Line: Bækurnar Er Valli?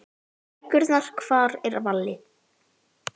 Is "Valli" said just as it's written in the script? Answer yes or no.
yes